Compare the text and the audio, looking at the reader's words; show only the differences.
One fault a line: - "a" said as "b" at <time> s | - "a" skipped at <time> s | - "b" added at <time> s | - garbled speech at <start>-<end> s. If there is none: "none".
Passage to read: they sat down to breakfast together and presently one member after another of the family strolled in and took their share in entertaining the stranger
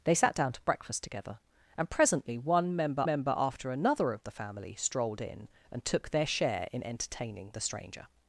- "member" added at 3.0 s